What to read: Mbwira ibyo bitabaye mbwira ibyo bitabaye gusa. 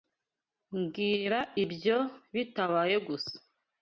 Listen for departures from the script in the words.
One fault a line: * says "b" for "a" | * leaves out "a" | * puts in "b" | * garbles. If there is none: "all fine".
* leaves out "mbwira ibyo bitabaye"